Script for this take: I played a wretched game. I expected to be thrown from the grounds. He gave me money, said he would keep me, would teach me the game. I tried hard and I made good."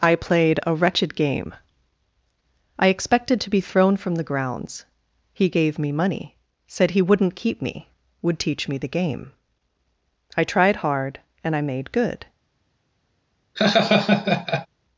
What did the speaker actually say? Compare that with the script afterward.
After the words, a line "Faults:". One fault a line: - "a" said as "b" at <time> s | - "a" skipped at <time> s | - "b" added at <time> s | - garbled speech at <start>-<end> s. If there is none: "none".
I played a wretched game. I expected to be thrown from the grounds. He gave me money, said he wouldn't keep me, would teach me the game. I tried hard and I made good."
Faults:
- "would" said as "wouldn't" at 7.0 s